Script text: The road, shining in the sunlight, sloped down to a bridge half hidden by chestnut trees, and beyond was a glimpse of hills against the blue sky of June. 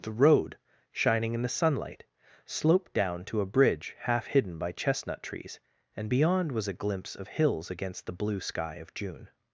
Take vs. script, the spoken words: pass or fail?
pass